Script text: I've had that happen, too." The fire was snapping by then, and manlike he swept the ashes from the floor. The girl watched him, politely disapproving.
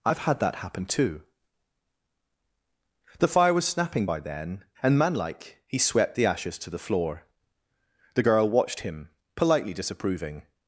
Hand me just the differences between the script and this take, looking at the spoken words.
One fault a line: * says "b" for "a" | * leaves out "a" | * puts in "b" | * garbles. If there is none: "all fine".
* says "to" for "from"